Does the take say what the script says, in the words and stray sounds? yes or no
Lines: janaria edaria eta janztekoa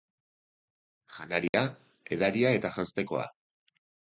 no